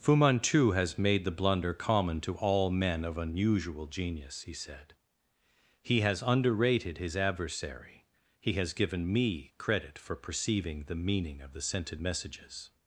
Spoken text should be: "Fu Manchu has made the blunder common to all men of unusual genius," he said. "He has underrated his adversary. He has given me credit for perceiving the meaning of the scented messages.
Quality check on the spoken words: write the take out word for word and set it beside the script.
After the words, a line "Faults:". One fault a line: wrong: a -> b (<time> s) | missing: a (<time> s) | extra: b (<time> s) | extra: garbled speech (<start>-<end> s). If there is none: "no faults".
"Fu Manchu has made the blunder common to all men of unusual genius," he said. "He has underrated his adversary. He has given me credit for perceiving the meaning of the scented messages.
Faults:
no faults